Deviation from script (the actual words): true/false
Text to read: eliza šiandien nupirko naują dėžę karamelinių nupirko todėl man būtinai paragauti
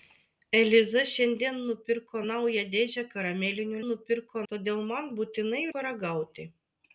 false